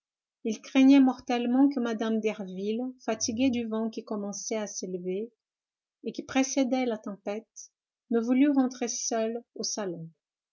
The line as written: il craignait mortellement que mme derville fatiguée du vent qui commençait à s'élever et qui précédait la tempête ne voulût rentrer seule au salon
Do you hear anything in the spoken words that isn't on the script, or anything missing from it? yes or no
no